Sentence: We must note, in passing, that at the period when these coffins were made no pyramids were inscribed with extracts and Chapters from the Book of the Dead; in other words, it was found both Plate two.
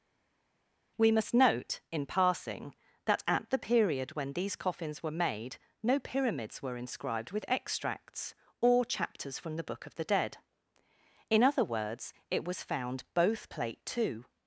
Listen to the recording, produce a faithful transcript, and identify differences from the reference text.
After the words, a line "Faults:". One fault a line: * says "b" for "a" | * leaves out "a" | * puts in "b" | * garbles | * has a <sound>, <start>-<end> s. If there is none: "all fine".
We must note, in passing, that at the period when these coffins were made no pyramids were inscribed with extracts or Chapters from the Book of the Dead; in other words, it was found both Plate two.
Faults:
* says "or" for "and"